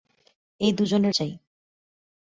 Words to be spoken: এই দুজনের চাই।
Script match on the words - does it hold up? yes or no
yes